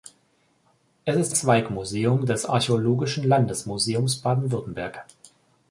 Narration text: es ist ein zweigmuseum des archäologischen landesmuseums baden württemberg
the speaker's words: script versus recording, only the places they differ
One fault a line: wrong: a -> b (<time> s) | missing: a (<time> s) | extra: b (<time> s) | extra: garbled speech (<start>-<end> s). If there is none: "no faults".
missing: ein (1.4 s)